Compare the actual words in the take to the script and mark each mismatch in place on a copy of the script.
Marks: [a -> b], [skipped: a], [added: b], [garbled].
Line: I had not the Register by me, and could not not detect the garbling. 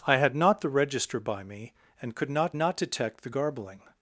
I had not the Register by me, and could not not detect the garbling.